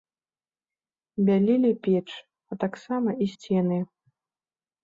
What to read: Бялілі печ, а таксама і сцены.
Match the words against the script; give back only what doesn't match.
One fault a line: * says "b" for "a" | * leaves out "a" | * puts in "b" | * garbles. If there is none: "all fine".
all fine